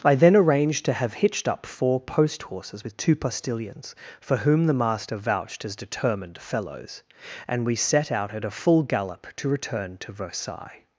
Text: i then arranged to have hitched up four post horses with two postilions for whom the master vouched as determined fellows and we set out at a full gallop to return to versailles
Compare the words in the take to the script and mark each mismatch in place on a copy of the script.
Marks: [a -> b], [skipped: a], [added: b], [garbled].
i then arranged to have hitched up four post horses with two postilions for whom the master vouched as determined fellows and we set out at a full gallop to return to versailles